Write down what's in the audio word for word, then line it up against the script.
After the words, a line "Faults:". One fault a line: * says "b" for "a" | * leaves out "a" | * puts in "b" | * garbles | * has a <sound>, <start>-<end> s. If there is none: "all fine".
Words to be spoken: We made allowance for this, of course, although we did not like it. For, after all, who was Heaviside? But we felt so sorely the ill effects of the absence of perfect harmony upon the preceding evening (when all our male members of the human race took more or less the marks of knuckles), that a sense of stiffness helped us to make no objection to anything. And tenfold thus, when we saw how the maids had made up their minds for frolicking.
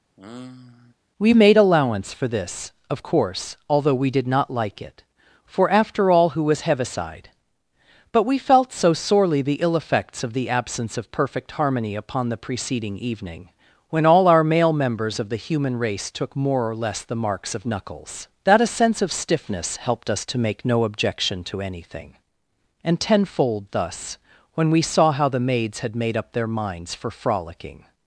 We made allowance for this, of course, although we did not like it. For, after all, who was Heaviside? But we felt so sorely the ill effects of the absence of perfect harmony upon the preceding evening (when all our male members of the human race took more or less the marks of knuckles), that a sense of stiffness helped us to make no objection to anything. And tenfold thus, when we saw how the maids had made up their minds for frolicking.
Faults:
* has a sigh, 0.2-0.9 s